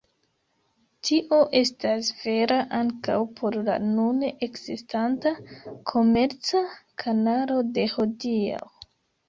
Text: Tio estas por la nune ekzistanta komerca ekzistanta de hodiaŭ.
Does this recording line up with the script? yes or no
no